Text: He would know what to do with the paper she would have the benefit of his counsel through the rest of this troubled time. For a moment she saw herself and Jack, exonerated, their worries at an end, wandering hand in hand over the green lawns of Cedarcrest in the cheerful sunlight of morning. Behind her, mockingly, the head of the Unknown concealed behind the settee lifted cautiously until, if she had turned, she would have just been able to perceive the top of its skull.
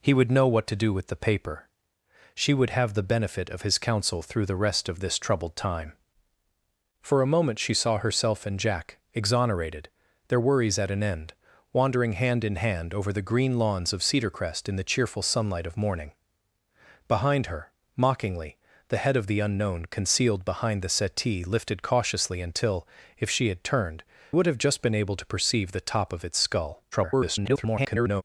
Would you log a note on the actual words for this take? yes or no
yes